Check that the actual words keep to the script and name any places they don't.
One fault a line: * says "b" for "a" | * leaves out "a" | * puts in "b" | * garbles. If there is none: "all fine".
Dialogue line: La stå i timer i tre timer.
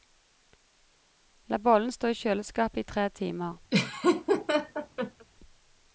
* puts in "bollen"
* says "kjøleskapet" for "timer"